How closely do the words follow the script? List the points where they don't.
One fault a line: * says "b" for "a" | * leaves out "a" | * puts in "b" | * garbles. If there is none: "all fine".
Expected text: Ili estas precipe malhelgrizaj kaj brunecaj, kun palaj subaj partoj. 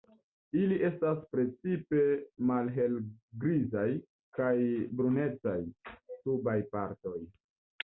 * leaves out "kun palaj"